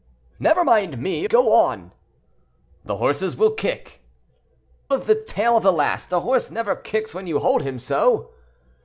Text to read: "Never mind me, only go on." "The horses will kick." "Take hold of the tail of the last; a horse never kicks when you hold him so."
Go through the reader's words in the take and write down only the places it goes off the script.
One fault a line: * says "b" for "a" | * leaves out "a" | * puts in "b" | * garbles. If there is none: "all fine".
* leaves out "only"
* leaves out "Take hold"